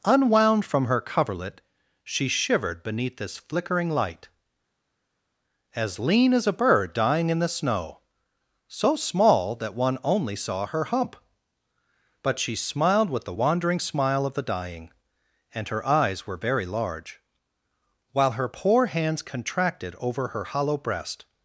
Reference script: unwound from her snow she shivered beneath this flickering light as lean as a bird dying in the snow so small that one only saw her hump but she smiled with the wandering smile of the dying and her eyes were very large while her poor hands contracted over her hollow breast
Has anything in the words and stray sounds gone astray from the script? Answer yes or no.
yes